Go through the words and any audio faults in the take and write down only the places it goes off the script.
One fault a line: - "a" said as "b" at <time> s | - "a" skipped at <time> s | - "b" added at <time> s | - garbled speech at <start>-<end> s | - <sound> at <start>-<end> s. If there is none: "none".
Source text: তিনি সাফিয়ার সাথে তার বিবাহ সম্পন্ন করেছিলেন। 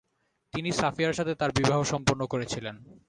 none